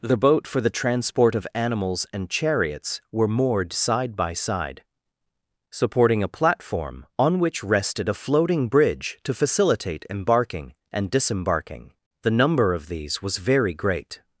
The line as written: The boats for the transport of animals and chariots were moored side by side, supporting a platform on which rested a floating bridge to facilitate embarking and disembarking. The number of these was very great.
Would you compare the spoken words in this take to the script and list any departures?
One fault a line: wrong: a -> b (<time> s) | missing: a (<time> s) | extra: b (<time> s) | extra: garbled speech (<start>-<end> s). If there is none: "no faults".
wrong: boats -> boat (0.2 s)